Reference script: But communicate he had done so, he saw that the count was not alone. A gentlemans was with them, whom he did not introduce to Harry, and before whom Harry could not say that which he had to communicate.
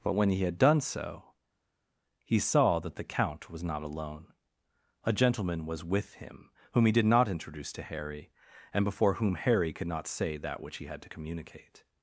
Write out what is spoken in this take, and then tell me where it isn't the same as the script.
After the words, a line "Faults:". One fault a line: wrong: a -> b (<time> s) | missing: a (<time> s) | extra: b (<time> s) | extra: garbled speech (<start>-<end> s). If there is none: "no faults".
But when he had done so, he saw that the count was not alone. A gentleman was with him, whom he did not introduce to Harry, and before whom Harry could not say that which he had to communicate.
Faults:
wrong: communicate -> when (0.1 s)
wrong: gentlemans -> gentleman (5.1 s)
wrong: them -> him (6.2 s)